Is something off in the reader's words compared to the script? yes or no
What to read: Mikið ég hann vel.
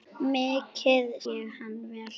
no